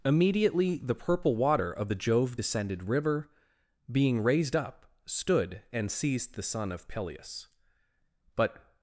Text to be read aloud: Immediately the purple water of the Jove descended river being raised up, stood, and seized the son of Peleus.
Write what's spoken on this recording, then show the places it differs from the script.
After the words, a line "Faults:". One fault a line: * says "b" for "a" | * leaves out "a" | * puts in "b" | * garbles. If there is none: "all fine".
Immediately the purple water of the Jove descended river being raised up, stood, and seized the son of Peleus. But
Faults:
* puts in "But"